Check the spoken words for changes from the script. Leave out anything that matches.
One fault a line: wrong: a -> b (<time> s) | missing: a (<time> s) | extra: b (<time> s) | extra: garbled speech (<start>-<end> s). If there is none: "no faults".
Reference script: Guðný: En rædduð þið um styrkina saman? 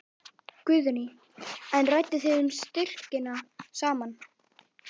no faults